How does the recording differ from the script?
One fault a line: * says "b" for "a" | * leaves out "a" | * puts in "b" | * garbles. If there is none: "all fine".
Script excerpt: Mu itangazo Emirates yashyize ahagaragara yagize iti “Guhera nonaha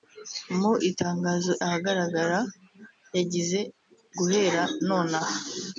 * leaves out "Emirates yashyize"
* leaves out "iti"